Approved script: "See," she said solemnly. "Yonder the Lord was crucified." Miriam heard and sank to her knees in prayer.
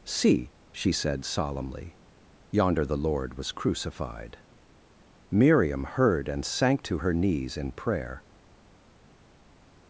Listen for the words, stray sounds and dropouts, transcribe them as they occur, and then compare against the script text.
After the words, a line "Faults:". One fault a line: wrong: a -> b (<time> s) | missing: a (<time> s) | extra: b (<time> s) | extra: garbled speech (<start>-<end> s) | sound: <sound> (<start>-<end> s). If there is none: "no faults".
"See," she said solemnly. "Yonder the Lord was crucified." Miriam heard and sank to her knees in prayer.
Faults:
no faults